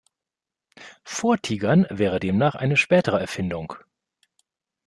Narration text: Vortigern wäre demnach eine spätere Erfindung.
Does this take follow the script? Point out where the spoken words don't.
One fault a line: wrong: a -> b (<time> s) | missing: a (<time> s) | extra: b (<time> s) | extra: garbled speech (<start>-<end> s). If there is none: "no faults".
no faults